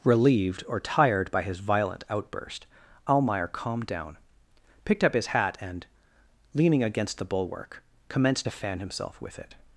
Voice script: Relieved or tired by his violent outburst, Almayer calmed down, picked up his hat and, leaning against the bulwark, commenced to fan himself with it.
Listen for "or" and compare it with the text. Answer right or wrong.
right